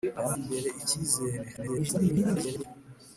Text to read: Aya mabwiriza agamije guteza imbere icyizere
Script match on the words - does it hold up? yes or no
no